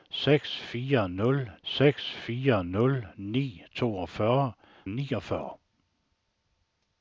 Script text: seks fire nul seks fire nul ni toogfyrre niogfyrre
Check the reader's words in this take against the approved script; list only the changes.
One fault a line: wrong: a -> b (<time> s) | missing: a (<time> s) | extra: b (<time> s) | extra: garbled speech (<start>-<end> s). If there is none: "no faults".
no faults